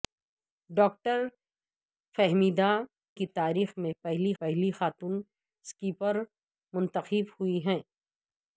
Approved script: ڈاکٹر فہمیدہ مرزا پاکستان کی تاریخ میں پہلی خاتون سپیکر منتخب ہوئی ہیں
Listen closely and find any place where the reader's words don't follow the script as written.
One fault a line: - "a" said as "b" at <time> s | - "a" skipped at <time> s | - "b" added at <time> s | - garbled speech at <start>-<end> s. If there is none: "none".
- "مرزا پاکستان" skipped at 2.7 s
- "پہلی" added at 4.4 s